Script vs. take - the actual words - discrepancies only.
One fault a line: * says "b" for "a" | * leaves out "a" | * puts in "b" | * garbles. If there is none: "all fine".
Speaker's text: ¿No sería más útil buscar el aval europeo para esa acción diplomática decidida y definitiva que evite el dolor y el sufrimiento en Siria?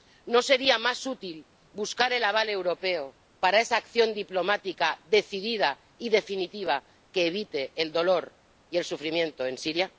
all fine